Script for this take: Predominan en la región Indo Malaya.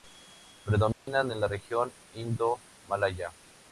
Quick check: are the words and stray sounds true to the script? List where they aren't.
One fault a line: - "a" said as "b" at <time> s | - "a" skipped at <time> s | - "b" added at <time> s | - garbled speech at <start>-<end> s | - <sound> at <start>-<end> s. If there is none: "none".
- dropout at 0.9-1.1 s